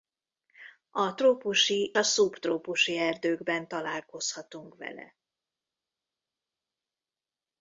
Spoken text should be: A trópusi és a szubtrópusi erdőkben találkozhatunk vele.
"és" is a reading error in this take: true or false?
true